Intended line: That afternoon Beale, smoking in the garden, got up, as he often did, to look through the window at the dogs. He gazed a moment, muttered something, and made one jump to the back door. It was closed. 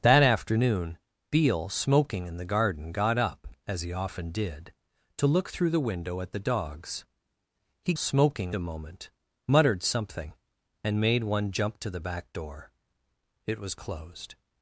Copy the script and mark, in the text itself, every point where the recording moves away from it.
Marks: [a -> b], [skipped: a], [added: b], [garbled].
That afternoon Beale, smoking in the garden, got up, as he often did, to look through the window at the dogs. He [gazed -> smoking] a moment, muttered something, and made one jump to the back door. It was closed.